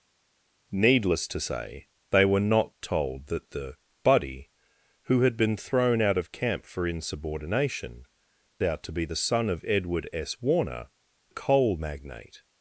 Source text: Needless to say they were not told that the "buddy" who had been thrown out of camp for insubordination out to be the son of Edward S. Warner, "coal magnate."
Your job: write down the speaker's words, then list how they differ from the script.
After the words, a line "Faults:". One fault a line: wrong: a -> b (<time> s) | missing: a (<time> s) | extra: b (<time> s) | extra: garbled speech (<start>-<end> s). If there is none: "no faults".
Needless to say they were not told that the "buddy" who had been thrown out of camp for insubordination out to be the son of Edward S. Warner, "coal magnate."
Faults:
no faults